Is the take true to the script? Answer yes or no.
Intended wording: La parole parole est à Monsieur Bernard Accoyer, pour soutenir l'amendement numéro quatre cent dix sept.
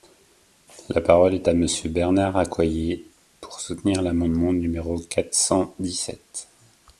no